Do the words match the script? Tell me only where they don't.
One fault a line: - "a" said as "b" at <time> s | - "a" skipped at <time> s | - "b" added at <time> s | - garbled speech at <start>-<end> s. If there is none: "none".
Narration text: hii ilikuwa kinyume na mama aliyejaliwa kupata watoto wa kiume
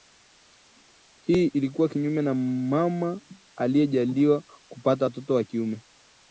none